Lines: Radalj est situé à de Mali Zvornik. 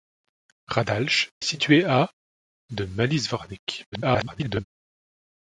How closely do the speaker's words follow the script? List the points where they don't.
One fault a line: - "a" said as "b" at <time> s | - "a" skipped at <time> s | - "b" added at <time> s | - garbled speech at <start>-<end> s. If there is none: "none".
- "est" skipped at 1.3 s
- garbled speech at 3.9-4.6 s